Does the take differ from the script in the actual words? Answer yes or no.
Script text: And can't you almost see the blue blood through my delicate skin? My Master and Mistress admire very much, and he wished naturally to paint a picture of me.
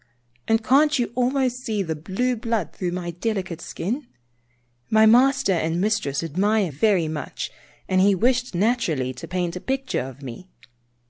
no